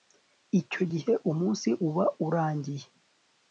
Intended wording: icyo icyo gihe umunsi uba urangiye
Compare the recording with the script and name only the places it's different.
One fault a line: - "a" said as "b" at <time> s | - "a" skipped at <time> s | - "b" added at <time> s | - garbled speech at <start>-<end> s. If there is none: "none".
- "icyo" skipped at 0.8 s